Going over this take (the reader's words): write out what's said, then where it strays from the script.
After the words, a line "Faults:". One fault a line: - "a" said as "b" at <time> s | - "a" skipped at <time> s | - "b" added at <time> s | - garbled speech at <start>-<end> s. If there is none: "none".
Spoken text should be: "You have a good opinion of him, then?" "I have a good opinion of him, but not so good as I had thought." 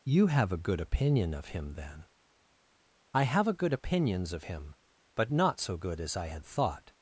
"You have a good opinion of him, then?" "I have a good opinions of him, but not so good as I had thought."
Faults:
- "opinion" said as "opinions" at 3.7 s